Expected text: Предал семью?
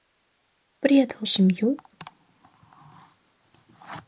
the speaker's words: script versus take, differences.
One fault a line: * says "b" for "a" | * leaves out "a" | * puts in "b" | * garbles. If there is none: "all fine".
all fine